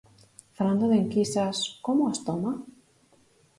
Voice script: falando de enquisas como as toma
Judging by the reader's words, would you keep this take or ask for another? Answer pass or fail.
pass